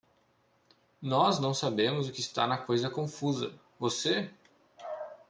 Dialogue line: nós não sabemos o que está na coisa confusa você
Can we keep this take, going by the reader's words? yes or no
yes